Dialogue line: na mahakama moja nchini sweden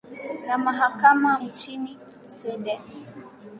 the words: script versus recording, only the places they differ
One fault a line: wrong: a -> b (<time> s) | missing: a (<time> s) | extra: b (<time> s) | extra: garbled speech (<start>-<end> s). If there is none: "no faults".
missing: moja (1.4 s)